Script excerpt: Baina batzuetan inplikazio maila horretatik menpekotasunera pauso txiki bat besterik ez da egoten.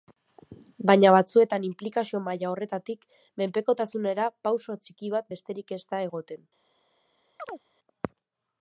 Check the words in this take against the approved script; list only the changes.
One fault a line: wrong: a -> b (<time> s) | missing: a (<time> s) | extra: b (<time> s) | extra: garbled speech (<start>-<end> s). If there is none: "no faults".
no faults